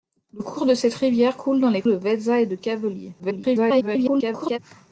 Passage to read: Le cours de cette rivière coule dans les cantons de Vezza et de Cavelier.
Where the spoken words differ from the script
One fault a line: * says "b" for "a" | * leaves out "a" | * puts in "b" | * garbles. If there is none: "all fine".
* leaves out "cantons"
* garbles